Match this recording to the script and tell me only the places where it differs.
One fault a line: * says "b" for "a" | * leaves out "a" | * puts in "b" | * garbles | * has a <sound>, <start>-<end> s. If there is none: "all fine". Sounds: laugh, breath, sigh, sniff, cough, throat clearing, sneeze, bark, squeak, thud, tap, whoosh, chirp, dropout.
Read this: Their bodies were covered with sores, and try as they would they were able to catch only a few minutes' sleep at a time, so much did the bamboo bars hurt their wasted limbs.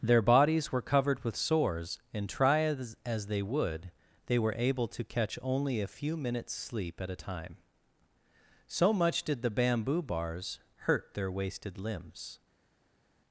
* puts in "as"